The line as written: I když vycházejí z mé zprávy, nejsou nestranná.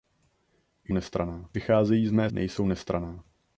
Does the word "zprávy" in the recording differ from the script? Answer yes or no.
yes